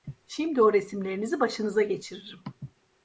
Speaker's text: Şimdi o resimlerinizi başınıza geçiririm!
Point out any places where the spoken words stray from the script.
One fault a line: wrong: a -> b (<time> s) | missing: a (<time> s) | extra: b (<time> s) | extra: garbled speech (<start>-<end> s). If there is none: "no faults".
no faults